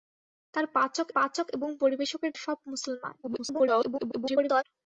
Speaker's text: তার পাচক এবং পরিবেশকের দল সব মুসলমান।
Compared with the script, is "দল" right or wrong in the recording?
wrong